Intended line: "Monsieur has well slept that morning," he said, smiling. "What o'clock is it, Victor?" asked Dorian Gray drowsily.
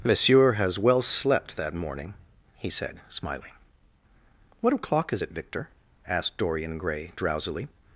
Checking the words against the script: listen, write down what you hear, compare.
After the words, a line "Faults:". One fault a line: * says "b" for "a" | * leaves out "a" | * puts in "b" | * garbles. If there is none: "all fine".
"Monsieur has well slept that morning," he said, smiling. "What o'clock is it, Victor?" asked Dorian Gray drowsily.
Faults:
all fine